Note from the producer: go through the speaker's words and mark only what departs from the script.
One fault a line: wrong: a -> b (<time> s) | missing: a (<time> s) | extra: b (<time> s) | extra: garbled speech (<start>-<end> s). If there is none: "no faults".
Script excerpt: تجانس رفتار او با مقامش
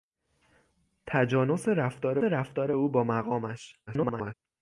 extra: رفتار (2.2 s)
extra: garbled speech (3.9-4.3 s)